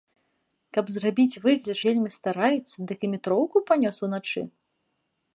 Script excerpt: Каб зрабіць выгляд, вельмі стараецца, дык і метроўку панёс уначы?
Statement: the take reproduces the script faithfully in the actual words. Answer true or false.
true